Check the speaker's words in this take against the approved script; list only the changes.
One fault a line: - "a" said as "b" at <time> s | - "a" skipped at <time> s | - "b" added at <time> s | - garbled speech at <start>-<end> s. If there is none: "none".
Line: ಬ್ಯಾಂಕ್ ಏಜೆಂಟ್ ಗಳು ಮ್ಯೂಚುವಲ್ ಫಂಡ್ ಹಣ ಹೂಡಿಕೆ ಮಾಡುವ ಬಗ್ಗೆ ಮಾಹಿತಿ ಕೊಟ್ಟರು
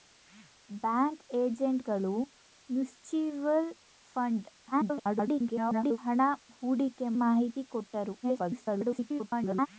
- garbled speech at 4.7-6.0 s
- "ಮಾಡುವ ಬಗ್ಗೆ" skipped at 7.1 s
- garbled speech at 8.2-9.7 s